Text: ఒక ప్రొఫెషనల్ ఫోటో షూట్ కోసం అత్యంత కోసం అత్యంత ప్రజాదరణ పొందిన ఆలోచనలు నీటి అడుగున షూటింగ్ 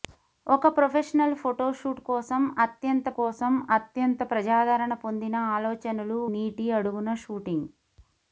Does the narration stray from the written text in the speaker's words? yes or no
no